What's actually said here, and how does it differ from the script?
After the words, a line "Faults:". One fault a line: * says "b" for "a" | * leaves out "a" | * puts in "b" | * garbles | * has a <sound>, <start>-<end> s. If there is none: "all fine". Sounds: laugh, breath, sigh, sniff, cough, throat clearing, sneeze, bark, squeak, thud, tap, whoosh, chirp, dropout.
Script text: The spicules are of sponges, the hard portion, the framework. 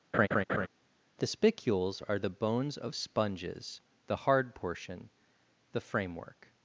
The spicules are the bones of sponges, the hard portion, the framework.
Faults:
* has a laugh, 0.1-0.7 s
* puts in "the bones"